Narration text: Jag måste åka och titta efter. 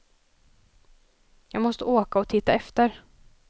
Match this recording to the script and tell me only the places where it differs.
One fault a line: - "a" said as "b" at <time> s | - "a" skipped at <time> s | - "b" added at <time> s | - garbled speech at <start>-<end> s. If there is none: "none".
none